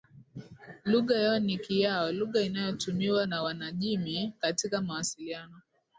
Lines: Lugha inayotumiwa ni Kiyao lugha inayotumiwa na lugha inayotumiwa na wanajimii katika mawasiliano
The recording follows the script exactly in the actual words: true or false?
false